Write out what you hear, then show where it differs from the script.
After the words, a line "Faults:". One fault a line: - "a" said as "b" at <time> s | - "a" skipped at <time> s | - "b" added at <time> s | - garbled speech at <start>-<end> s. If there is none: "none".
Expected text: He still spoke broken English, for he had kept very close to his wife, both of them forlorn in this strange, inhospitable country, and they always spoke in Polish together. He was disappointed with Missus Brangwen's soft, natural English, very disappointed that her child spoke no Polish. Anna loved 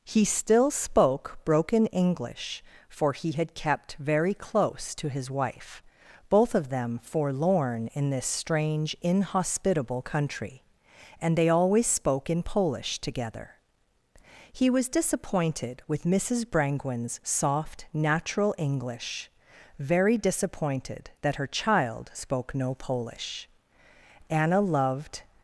He still spoke broken English, for he had kept very close to his wife, both of them forlorn in this strange, inhospitable country, and they always spoke in Polish together. He was disappointed with Missus Brangwen's soft, natural English, very disappointed that her child spoke no Polish. Anna loved
Faults:
none